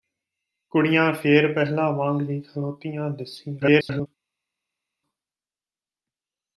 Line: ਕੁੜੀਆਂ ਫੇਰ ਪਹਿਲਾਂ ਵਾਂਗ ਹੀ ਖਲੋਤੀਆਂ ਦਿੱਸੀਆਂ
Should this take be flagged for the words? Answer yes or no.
yes